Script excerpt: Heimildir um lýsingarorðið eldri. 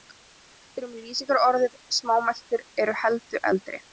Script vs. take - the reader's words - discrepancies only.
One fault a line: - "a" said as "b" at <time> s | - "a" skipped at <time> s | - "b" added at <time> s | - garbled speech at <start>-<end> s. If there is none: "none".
- "smámæltur eru heldur" added at 2.0 s